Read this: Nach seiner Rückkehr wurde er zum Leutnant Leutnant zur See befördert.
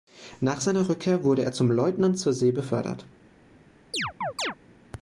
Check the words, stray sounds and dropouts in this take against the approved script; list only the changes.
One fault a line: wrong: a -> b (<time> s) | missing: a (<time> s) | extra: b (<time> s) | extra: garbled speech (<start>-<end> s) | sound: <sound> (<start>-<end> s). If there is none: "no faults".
missing: Leutnant (2.2 s)
sound: chirp (3.9-4.6 s)